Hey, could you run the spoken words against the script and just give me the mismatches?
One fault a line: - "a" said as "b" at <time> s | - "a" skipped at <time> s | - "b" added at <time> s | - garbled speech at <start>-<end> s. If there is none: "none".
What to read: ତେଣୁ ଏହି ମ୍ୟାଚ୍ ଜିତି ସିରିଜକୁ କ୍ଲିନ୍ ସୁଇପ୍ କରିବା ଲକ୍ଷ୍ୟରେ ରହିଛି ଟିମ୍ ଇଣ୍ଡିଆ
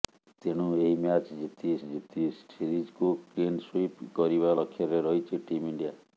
- "ଜିତି" added at 1.8 s